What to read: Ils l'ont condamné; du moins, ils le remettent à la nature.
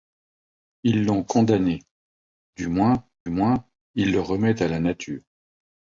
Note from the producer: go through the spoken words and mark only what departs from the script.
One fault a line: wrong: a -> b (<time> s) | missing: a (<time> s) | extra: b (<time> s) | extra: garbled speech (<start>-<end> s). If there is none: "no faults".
extra: moins (3.3 s)